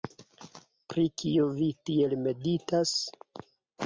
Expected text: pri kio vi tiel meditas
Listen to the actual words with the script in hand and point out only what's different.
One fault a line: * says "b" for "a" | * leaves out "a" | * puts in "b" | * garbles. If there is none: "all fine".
all fine